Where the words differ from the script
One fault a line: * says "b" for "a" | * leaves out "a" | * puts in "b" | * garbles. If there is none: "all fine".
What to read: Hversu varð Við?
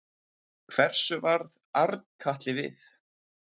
* puts in "Arnkatli"